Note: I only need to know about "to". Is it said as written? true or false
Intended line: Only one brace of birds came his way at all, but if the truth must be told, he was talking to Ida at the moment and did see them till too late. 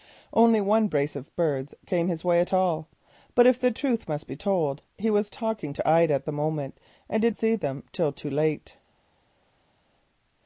true